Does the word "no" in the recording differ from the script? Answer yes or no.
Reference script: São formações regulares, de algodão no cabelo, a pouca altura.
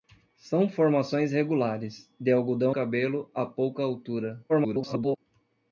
yes